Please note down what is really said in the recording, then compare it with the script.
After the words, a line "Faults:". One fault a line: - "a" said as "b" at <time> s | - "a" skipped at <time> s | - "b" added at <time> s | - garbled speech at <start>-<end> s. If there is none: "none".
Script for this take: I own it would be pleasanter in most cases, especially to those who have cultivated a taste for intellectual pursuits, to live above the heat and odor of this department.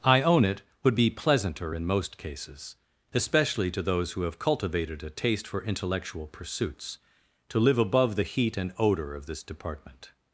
I own it would be pleasanter in most cases, especially to those who have cultivated a taste for intellectual pursuits, to live above the heat and odor of this department.
Faults:
none